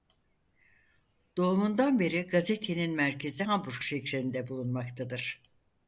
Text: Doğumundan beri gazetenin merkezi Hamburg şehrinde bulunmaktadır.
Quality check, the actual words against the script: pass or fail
pass